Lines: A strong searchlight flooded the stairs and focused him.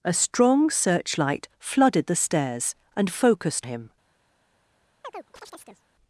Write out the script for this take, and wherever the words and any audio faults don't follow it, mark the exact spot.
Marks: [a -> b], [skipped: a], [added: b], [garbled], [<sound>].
A strong searchlight flooded the stairs and focused him. [chirp]